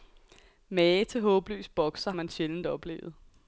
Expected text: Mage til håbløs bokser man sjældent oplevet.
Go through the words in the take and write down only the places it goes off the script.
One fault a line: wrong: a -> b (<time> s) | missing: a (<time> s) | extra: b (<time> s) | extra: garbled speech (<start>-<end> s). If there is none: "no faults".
no faults